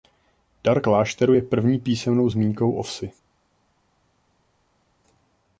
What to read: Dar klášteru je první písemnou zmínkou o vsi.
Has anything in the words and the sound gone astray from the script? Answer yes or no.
no